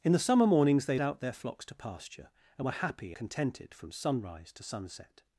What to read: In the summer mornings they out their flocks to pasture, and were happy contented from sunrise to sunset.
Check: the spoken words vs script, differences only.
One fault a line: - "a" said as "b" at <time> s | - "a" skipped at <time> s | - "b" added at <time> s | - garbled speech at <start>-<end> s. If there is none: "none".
none